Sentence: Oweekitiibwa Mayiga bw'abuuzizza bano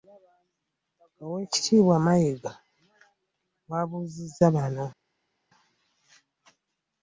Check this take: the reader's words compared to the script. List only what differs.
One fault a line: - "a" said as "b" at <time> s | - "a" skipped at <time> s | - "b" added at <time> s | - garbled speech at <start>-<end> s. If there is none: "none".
none